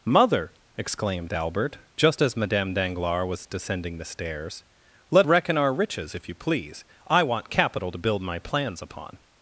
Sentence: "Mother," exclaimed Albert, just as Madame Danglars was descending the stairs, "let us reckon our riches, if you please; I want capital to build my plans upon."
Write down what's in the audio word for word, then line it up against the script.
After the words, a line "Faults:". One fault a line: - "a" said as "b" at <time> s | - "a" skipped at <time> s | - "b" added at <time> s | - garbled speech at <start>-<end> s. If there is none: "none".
"Mother," exclaimed Albert, just as Madame Danglars was descending the stairs, "let reckon our riches, if you please; I want capital to build my plans upon."
Faults:
- "us" skipped at 5.3 s